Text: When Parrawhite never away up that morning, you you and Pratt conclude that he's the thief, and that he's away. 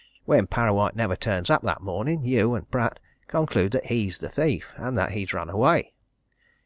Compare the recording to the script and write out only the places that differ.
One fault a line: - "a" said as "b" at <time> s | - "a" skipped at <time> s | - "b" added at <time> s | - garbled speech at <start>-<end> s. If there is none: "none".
- "away" said as "turns" at 1.1 s
- "you" skipped at 2.5 s
- "run" added at 5.3 s